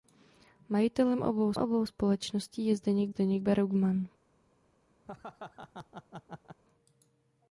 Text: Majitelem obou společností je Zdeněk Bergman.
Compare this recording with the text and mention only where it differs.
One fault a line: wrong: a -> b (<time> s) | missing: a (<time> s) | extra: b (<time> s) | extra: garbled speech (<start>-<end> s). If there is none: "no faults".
extra: obou (1.6 s)
extra: Zdeněk (3.1 s)